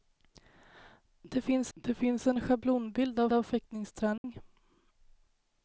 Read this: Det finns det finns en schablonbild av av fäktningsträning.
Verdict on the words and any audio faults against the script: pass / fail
fail